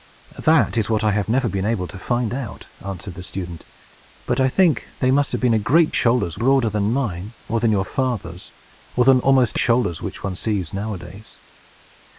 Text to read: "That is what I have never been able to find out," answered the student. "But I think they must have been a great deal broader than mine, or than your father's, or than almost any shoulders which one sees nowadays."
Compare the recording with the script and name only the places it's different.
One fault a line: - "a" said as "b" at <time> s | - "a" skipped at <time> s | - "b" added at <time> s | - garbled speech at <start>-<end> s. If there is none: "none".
- "deal" said as "shoulders" at 5.9 s
- "any" skipped at 9.6 s